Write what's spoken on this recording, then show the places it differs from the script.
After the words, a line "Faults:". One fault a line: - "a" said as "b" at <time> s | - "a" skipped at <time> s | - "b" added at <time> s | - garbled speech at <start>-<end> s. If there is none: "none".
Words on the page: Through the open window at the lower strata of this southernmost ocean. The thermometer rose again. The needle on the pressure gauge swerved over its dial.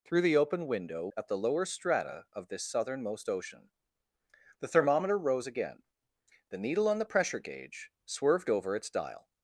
Through the open window at the lower strata of this southernmost ocean. The thermometer rose again. The needle on the pressure gauge swerved over its dial.
Faults:
none